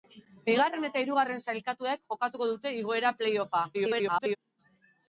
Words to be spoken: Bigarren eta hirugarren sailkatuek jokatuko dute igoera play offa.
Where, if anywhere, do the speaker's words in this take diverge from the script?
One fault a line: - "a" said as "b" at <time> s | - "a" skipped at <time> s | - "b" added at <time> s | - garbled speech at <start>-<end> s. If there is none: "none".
- garbled speech at 3.7-4.4 s